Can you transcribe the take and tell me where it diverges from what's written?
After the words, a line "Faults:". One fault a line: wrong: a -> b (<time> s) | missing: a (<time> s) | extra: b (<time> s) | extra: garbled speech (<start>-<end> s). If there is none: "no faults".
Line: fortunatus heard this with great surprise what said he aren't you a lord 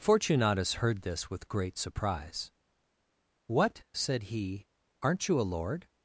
fortunatus heard this with great surprise what said he aren't you a lord
Faults:
no faults